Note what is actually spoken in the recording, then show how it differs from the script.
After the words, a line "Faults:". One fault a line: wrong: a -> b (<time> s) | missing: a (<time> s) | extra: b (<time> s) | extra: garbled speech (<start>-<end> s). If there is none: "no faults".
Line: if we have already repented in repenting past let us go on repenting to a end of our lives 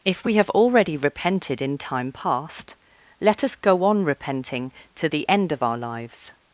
if we have already repented in time past let us go on repenting to the end of our lives
Faults:
wrong: repenting -> time (1.8 s)
wrong: a -> the (5.1 s)